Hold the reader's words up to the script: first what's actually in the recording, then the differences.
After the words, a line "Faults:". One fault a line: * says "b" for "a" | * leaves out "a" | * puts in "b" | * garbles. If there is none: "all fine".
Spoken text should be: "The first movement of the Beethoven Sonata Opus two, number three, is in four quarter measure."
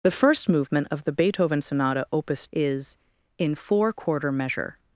"The first movement of the Beethoven Sonata Opus is in four quarter measure."
Faults:
* leaves out "two number three"